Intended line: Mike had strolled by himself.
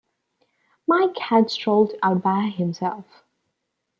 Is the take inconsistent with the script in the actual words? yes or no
yes